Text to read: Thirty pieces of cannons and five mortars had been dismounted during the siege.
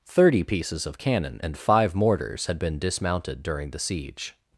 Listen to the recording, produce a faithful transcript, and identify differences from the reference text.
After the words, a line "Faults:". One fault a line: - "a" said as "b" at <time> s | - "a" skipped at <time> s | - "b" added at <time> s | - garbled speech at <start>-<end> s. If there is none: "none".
Thirty pieces of cannon and five mortars had been dismounted during the siege.
Faults:
- "cannons" said as "cannon" at 1.0 s